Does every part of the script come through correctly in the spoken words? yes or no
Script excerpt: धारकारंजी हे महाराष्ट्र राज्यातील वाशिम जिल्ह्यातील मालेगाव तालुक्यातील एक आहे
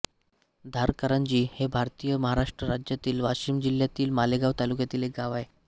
no